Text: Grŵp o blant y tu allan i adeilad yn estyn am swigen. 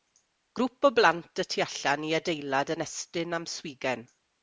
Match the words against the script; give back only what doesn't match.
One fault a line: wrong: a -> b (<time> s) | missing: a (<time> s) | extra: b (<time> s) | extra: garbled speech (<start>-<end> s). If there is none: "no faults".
no faults